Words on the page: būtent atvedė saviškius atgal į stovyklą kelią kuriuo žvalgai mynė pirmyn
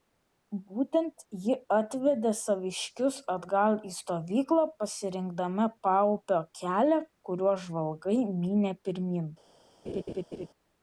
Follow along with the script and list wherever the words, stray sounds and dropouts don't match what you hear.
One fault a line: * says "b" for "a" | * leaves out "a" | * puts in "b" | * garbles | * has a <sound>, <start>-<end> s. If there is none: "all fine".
* puts in "ji"
* puts in "pasirinkdama paupio"
* has a laugh, 9.8-10.5 s